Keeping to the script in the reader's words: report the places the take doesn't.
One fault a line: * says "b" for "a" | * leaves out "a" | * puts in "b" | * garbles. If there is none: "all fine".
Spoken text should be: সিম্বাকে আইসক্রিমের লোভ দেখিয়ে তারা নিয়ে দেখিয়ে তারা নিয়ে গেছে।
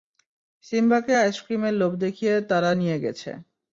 * leaves out "দেখিয়ে তারা নিয়ে"